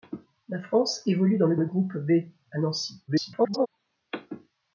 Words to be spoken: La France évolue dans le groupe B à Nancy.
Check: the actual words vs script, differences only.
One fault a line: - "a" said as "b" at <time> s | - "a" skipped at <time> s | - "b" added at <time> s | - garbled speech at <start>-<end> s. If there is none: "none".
- "le" added at 1.5 s
- garbled speech at 3.1-3.7 s